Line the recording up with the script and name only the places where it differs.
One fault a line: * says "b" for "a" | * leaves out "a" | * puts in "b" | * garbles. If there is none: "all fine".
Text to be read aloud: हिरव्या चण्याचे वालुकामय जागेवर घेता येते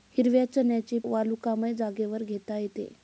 all fine